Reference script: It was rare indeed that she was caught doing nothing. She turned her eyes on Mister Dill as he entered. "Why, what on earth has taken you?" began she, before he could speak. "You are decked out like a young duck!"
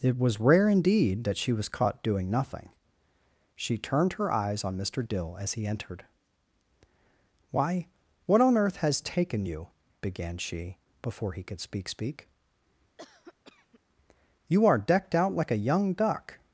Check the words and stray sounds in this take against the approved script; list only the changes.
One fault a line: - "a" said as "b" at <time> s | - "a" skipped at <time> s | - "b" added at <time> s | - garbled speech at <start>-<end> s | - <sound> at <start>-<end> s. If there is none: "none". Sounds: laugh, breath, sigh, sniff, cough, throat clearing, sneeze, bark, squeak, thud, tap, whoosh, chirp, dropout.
- "speak" added at 11.9 s
- cough at 13.0-13.8 s